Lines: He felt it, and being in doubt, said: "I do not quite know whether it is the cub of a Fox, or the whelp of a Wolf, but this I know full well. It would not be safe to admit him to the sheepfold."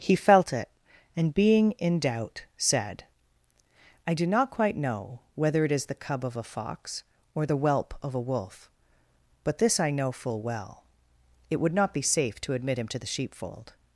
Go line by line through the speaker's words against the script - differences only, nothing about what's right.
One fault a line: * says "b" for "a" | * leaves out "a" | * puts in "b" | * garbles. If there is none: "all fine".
all fine